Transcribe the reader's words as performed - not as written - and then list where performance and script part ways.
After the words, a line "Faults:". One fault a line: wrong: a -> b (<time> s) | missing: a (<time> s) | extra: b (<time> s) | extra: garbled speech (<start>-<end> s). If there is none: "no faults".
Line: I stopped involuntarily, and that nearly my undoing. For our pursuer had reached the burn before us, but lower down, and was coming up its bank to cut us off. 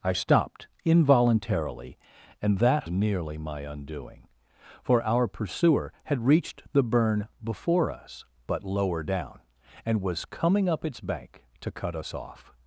I stopped involuntarily, and that nearly my undoing. For our pursuer had reached the burn before us, but lower down, and was coming up its bank to cut us off.
Faults:
no faults